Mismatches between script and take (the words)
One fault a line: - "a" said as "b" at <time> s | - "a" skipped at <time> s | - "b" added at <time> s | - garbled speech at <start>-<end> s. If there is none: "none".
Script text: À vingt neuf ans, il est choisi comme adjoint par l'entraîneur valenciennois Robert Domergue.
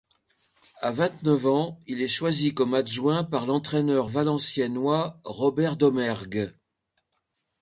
none